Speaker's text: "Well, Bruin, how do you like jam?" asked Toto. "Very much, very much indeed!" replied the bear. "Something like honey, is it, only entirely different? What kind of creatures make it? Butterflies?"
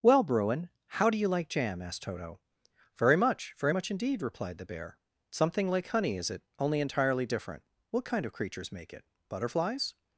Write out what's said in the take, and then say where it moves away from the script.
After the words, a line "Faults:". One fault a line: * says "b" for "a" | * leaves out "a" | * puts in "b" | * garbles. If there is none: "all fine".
"Well, Bruin, how do you like jam?" asked Toto. "Very much, very much indeed!" replied the bear. "Something like honey, is it, only entirely different? What kind of creatures make it? Butterflies?"
Faults:
all fine